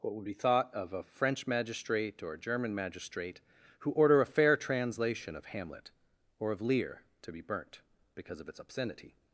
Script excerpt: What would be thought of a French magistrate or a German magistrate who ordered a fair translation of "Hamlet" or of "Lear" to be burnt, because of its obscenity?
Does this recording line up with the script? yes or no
no